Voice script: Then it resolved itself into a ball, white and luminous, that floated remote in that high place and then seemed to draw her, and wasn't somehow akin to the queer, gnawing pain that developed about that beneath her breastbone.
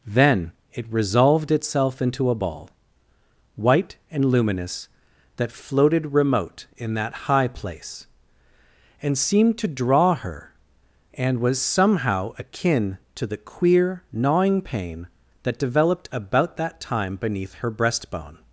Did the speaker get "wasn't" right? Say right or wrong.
wrong